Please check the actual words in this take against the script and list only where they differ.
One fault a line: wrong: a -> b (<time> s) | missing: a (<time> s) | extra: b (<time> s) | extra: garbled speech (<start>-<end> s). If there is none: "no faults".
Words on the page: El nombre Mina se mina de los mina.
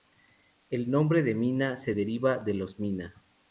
extra: de (1.2 s)
wrong: mina -> deriva (1.9 s)